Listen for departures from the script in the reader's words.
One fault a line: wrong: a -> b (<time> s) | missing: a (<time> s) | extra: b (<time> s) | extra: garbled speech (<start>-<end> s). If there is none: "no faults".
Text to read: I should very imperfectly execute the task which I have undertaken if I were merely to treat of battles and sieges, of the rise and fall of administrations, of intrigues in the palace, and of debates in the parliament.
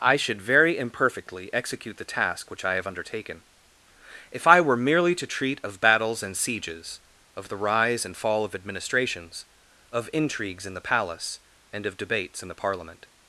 no faults